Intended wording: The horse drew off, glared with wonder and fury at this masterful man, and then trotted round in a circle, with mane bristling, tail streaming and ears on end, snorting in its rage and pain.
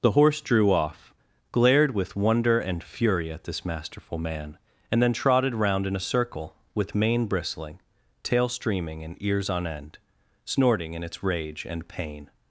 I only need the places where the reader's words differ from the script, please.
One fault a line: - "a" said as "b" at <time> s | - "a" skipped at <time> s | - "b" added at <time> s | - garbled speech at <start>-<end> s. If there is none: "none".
none